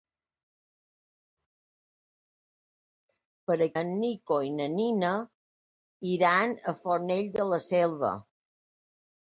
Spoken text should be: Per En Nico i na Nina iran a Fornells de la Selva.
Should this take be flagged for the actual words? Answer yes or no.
no